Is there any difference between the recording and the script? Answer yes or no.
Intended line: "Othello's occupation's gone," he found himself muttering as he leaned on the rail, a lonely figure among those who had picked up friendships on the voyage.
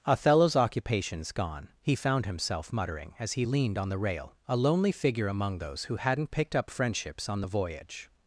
yes